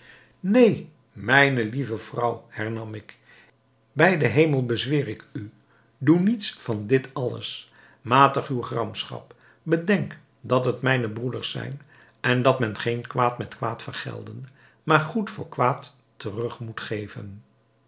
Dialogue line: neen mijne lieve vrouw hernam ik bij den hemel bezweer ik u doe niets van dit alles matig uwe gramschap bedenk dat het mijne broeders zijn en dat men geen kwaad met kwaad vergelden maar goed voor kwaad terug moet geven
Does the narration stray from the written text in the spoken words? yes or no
no